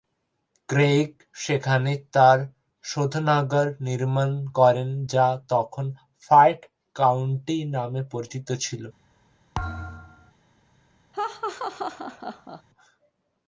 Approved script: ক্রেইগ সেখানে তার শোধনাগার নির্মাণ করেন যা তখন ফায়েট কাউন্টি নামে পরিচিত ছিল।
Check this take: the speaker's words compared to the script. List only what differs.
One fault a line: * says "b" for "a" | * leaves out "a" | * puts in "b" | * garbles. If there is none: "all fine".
all fine